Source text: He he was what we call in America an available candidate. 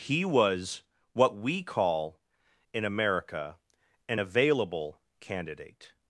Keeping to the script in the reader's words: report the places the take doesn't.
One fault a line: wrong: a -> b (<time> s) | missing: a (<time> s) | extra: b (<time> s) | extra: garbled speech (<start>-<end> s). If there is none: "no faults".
missing: he (0.2 s)